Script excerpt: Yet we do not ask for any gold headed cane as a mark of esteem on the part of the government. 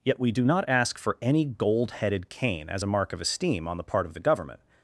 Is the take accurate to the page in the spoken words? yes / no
yes